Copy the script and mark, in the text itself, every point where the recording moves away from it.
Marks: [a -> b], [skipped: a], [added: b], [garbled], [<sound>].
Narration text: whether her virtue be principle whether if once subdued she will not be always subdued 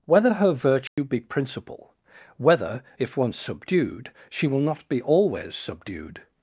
whether her virtue [dropout] be principle whether if once subdued she will not be always subdued